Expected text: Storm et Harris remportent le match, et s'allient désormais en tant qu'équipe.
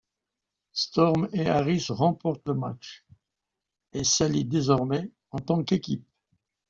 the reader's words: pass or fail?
pass